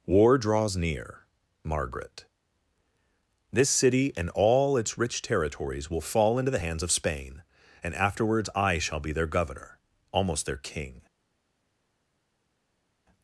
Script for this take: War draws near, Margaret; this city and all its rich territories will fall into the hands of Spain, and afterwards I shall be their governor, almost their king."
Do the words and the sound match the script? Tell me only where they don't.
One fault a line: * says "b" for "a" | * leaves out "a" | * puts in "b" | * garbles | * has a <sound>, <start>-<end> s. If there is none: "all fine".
all fine